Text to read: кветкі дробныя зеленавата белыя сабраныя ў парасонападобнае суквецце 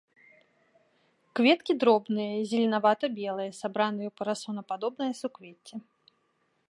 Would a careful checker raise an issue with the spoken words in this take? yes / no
no